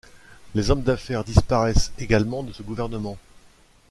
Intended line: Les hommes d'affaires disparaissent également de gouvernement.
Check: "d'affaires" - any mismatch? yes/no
no